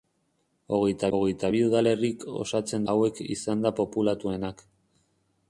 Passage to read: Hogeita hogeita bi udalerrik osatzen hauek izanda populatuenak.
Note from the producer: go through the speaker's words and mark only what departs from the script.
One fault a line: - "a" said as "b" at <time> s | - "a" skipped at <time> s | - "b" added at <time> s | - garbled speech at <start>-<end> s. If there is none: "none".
none